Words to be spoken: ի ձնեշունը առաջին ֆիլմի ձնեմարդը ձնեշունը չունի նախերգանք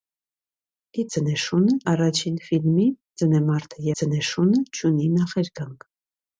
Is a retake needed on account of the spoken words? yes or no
no